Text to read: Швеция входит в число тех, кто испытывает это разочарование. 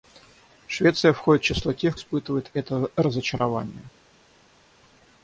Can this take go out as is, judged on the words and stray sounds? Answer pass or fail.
fail